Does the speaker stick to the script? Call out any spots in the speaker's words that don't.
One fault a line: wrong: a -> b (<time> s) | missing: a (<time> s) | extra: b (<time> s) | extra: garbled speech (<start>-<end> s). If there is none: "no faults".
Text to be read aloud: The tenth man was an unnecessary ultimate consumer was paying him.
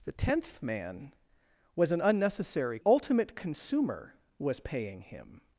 no faults